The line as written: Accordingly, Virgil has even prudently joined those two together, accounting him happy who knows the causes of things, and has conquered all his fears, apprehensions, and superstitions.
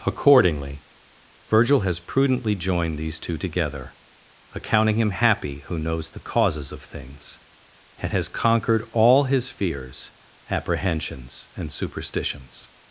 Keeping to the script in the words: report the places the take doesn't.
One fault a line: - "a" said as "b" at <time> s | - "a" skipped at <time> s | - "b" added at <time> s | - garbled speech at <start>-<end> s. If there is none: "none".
- "even" skipped at 2.0 s
- "those" said as "these" at 3.0 s